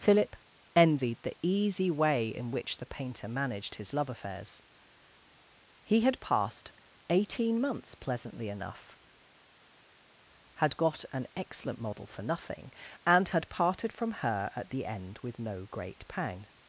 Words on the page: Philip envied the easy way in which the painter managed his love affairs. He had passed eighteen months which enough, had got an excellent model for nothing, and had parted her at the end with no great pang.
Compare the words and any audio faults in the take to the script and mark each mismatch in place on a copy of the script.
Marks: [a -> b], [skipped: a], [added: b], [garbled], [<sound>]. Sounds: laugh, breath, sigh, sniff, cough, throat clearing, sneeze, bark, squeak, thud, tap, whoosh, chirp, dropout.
Philip envied the easy way in which the painter managed his love affairs. He had passed eighteen months [which -> pleasantly] enough, had got an excellent model for nothing, and had parted [added: from] her at the end with no great pang.